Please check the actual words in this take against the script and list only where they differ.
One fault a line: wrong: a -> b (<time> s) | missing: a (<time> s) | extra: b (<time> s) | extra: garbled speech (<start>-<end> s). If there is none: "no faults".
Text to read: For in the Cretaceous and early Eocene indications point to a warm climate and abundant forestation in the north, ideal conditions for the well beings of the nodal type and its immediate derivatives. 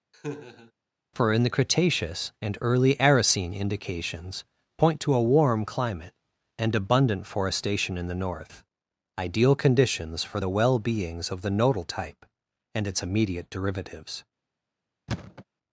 no faults